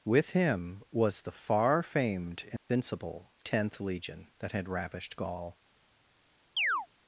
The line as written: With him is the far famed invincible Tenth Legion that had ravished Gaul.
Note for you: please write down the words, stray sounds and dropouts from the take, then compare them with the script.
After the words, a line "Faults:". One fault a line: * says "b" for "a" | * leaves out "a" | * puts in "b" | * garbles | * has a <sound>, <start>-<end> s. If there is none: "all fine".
With him was the far famed invincible Tenth Legion that had ravished Gaul.
Faults:
* says "was" for "is"
* has a dropout, 2.6-2.7 s
* has a chirp, 6.6-6.9 s